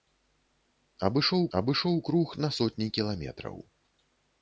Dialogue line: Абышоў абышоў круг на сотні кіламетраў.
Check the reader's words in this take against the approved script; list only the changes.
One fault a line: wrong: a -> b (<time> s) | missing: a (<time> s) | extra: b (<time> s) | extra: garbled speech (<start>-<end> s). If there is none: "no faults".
no faults